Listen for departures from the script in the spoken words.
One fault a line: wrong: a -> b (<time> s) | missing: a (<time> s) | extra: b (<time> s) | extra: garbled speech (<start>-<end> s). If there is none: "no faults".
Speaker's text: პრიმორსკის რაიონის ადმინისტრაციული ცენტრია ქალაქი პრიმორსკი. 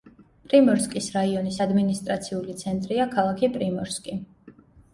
no faults